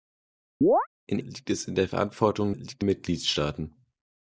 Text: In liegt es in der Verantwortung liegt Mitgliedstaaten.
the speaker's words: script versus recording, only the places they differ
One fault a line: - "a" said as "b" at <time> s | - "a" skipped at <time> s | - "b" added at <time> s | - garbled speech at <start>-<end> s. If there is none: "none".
none